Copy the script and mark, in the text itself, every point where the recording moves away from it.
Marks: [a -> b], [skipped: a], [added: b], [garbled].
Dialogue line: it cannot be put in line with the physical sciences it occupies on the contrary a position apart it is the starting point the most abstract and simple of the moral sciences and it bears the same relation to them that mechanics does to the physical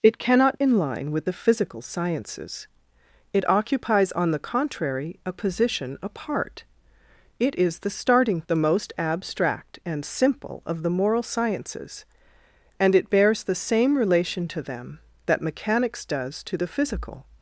it cannot [skipped: be put] in line with the physical sciences it occupies on the contrary a position apart it is the starting [skipped: point] the most abstract and simple of the moral sciences and it bears the same relation to them that mechanics does to the physical